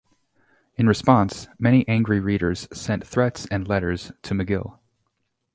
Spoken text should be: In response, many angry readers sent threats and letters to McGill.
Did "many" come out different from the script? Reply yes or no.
no